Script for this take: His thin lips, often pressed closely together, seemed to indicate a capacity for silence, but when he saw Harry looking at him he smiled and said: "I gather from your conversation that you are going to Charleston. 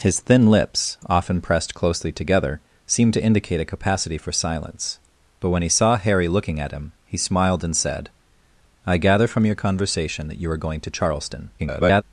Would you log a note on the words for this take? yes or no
yes